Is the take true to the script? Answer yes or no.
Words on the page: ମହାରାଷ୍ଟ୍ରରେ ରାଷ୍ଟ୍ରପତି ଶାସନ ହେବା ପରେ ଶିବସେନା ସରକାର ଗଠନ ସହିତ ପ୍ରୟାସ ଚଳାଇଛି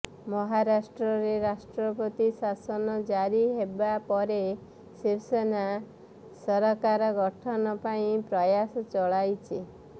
no